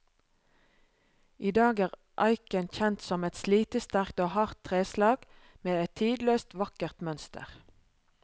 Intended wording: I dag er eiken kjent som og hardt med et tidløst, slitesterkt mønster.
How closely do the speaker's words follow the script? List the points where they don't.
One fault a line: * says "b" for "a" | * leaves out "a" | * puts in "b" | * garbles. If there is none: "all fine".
* puts in "et slitesterkt"
* puts in "treslag"
* says "vakkert" for "slitesterkt"